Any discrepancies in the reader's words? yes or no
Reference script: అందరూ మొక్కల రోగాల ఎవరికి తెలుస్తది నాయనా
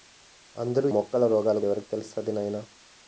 no